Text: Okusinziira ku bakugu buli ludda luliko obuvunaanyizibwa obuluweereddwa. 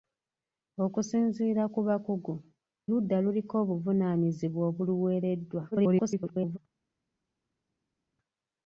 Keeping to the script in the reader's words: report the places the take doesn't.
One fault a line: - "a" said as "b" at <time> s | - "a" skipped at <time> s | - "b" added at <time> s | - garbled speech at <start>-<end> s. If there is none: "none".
- "buli" skipped at 2.3 s
- garbled speech at 5.7-6.6 s